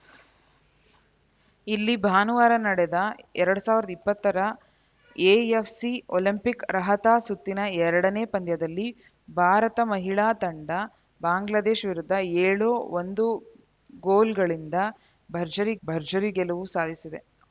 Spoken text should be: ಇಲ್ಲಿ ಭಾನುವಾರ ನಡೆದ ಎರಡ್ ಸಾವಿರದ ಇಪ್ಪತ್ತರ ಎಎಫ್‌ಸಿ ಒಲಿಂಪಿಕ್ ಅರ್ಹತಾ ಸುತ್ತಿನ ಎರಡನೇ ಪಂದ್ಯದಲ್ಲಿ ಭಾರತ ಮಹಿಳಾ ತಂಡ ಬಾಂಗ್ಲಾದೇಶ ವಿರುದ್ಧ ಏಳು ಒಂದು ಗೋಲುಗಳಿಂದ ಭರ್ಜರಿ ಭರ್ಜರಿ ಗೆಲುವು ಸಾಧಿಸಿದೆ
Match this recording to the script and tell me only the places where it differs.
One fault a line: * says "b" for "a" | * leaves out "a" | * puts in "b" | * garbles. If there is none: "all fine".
all fine